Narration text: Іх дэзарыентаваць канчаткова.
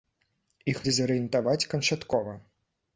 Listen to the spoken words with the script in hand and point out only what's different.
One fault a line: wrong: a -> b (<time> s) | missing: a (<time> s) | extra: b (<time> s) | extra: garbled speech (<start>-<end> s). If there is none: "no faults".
no faults